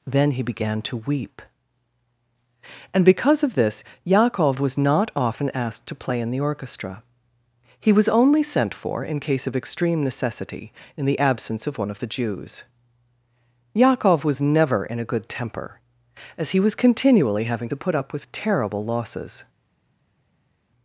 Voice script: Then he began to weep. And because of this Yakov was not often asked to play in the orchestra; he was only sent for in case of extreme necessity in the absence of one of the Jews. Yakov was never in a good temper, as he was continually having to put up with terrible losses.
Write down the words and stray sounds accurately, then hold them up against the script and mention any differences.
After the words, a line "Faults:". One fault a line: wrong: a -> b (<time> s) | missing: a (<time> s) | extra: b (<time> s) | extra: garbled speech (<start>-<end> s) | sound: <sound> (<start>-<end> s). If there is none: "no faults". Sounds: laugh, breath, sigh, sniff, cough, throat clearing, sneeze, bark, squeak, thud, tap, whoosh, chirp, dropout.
Then he began to weep. And because of this Yakov was not often asked to play in the orchestra; he was only sent for in case of extreme necessity in the absence of one of the Jews. Yakov was never in a good temper, as he was continually having to put up with terrible losses.
Faults:
no faults